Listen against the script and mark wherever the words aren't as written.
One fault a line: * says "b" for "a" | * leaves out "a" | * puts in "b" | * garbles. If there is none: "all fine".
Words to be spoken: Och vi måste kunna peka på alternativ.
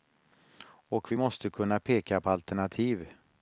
all fine